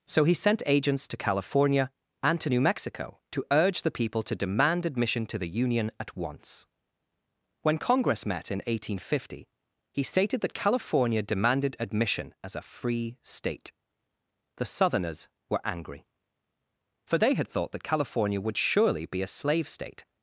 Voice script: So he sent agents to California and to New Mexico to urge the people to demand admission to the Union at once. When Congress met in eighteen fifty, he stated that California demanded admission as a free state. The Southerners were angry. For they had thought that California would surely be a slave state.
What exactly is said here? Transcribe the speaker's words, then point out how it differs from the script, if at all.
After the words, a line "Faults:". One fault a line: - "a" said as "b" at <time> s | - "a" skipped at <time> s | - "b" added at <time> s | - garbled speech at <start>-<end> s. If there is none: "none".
So he sent agents to California and to New Mexico to urge the people to demand admission to the Union at once. When Congress met in eighteen fifty, he stated that California demanded admission as a free state. The Southerners were angry. For they had thought that California would surely be a slave state.
Faults:
none